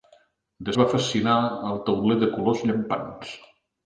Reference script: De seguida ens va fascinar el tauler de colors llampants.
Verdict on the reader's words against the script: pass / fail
fail